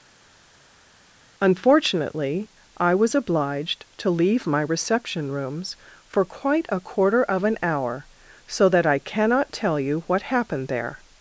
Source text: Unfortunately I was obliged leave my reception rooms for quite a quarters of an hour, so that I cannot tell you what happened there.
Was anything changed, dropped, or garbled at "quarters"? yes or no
yes